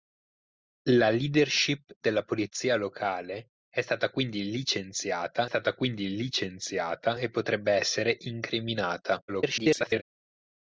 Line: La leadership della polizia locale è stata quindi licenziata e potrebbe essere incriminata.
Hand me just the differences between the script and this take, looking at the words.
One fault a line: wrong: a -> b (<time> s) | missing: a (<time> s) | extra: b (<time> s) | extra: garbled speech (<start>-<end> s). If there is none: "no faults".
extra: stata quindi licenziata (5.4 s)
extra: garbled speech (9.3-10.0 s)